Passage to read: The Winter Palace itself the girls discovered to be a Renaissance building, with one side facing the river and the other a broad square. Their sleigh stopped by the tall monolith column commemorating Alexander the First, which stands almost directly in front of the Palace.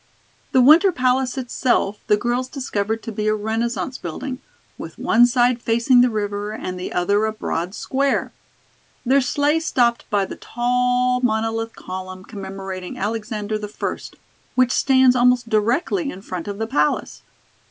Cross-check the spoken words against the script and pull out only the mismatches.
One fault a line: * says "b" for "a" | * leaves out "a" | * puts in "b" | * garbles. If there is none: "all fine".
all fine